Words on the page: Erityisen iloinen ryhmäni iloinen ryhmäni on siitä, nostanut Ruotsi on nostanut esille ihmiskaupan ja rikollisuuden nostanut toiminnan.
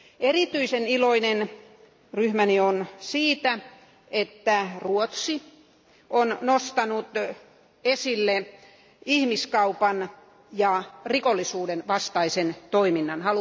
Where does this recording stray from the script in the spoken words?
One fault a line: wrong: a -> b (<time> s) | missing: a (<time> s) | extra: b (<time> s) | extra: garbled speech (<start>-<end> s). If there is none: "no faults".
missing: iloinen ryhmäni (2.6 s)
wrong: nostanut -> että (4.1 s)
wrong: nostanut -> vastaisen (11.9 s)